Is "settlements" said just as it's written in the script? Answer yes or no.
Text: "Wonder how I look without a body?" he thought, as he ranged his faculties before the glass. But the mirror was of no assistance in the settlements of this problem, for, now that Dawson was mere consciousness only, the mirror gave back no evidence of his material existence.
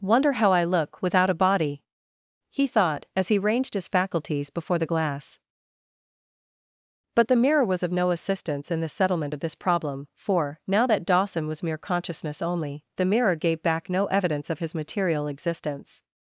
no